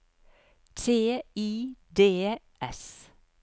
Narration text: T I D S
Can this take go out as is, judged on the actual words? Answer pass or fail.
pass